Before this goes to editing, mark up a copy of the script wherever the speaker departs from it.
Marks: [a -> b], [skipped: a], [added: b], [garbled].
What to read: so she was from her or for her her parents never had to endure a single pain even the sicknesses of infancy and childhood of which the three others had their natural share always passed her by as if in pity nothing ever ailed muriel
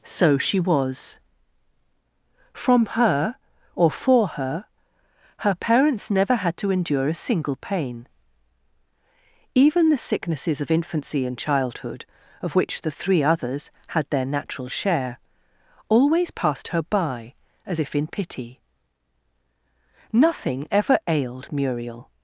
so she was from her or for her her parents never had to endure a single pain even the sicknesses of infancy and childhood of which the three others had their natural share always passed her by as if in pity nothing ever ailed muriel